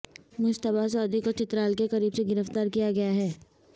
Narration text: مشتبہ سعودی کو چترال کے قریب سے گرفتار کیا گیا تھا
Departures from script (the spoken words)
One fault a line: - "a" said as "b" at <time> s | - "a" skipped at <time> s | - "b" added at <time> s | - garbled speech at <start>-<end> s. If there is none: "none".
- "تھا" said as "ہے" at 3.1 s